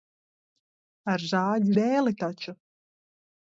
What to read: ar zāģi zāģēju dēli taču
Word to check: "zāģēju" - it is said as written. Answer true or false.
false